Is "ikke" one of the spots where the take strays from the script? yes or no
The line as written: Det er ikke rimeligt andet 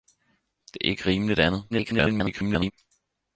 no